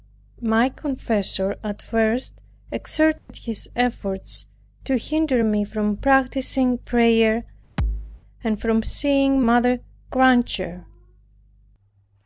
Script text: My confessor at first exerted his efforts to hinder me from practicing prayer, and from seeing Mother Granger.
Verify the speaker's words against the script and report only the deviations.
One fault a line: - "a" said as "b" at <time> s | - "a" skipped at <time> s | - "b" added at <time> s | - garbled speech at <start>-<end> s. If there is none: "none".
none